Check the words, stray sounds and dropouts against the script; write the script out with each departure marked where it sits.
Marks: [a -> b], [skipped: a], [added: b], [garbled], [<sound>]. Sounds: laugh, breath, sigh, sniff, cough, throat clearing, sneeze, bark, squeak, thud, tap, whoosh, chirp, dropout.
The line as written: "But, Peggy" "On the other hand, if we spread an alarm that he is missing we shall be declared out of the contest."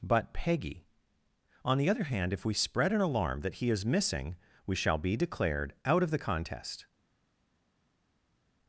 "But, Peggy" "On the other hand, if we spread an alarm that he is missing we shall be declared out of the contest."